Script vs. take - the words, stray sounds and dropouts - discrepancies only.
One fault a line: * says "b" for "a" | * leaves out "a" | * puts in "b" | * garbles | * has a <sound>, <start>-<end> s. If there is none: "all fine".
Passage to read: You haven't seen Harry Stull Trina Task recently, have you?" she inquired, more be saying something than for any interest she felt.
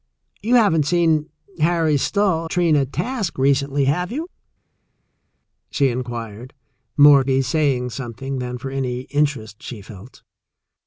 all fine